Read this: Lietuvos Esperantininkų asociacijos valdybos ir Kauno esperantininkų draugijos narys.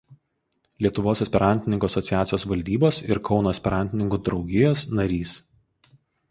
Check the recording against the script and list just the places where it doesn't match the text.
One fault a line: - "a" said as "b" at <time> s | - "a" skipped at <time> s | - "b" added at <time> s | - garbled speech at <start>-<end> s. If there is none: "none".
none